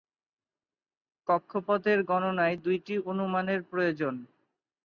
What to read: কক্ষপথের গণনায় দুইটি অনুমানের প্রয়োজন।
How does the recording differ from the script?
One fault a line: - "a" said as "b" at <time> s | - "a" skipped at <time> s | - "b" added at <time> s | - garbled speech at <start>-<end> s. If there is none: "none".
none